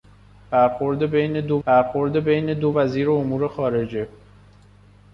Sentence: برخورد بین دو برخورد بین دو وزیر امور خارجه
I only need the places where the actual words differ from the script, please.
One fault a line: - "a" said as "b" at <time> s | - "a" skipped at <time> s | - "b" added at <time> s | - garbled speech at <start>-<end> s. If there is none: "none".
none